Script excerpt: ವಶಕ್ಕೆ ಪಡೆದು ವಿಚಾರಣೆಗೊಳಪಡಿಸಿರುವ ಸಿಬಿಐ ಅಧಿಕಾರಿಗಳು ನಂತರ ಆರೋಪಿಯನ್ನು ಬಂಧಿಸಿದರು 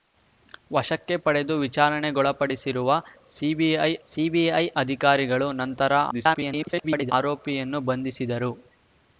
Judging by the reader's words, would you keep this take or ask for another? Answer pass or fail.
fail